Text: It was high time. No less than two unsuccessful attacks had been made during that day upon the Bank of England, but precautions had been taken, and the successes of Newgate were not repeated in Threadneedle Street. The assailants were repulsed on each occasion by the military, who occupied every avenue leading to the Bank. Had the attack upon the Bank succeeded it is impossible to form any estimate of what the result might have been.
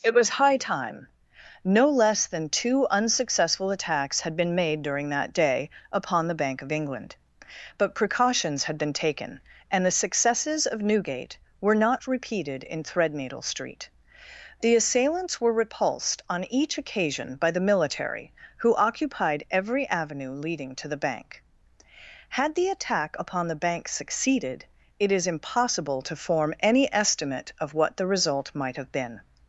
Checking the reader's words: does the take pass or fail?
pass